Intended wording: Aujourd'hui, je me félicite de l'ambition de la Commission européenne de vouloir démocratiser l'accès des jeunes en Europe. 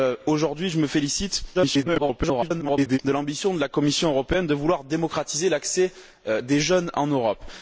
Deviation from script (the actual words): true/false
true